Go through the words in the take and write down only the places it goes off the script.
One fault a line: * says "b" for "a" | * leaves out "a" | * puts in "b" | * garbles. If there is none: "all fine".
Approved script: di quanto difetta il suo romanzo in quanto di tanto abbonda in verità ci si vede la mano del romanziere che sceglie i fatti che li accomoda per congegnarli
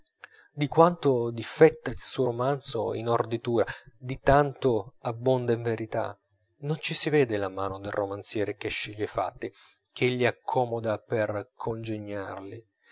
* says "orditura" for "quanto"
* puts in "non"